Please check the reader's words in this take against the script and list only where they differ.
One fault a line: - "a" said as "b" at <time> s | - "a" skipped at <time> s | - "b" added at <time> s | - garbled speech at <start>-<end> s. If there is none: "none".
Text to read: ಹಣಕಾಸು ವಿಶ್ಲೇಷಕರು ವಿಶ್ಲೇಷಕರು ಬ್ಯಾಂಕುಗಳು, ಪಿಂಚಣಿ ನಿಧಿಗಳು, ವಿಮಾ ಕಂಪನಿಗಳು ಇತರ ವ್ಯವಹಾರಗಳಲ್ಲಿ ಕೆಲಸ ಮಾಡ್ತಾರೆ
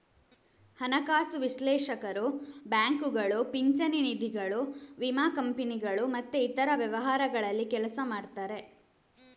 - "ವಿಶ್ಲೇಷಕರು" skipped at 2.2 s
- "ಮತ್ತೆ" added at 6.1 s